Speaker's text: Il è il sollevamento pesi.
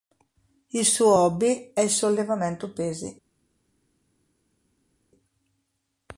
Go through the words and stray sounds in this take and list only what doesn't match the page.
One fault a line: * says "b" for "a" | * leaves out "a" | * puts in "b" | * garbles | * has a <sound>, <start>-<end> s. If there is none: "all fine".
* puts in "suo hobby"